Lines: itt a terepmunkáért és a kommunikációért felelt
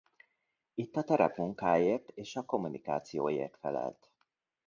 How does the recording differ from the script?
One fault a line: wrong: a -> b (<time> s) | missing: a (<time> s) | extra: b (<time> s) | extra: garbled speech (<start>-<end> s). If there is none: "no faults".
no faults